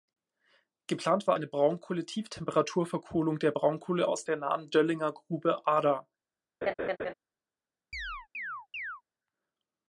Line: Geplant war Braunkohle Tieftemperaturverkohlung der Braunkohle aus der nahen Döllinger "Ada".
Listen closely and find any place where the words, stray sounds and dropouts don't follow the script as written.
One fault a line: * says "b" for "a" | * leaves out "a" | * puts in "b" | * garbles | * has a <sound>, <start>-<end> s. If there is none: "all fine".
* puts in "eine"
* puts in "Grube"
* has a laugh, 6.6-7.1 s
* has a chirp, 7.9-9.0 s